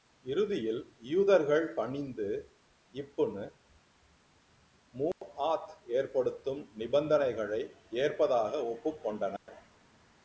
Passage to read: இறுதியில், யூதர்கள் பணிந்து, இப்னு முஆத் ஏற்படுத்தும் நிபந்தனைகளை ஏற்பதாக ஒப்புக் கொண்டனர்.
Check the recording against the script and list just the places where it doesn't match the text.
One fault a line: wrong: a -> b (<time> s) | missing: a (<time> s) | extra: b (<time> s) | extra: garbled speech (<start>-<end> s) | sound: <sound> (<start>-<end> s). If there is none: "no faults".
sound: dropout (5.1-5.2 s)
sound: dropout (9.4-9.5 s)